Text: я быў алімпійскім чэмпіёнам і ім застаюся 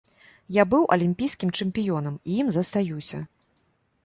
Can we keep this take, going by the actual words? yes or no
yes